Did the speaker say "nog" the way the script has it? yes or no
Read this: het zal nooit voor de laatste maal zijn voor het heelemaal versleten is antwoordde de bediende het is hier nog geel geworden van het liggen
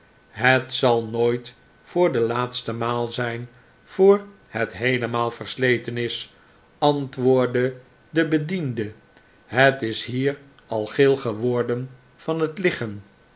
no